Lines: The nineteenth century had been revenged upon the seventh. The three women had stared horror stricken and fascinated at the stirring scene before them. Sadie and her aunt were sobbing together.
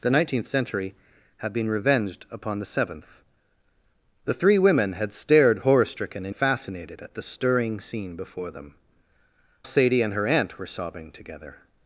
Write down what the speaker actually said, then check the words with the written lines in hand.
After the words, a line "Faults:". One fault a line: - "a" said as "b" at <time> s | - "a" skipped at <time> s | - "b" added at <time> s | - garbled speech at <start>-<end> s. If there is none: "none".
The nineteenth century had been revenged upon the seventh. The three women had stared horror stricken and fascinated at the stirring scene before them. Sadie and her aunt were sobbing together.
Faults:
none